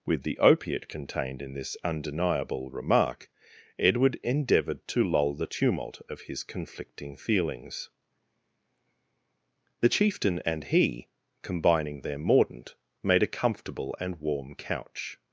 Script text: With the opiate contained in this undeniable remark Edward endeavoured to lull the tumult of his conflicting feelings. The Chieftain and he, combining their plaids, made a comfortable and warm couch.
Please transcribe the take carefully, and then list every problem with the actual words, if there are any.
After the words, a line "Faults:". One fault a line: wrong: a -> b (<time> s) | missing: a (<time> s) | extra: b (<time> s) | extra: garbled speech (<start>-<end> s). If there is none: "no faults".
With the opiate contained in this undeniable remark Edward endeavoured to lull the tumult of his conflicting feelings. The Chieftain and he, combining their mordant, made a comfortable and warm couch.
Faults:
wrong: plaids -> mordant (12.2 s)